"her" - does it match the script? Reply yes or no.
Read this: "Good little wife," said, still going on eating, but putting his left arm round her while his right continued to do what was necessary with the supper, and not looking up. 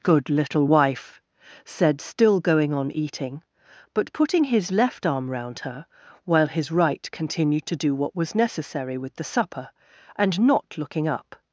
yes